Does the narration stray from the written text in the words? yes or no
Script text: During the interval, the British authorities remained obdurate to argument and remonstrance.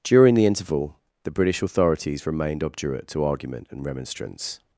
no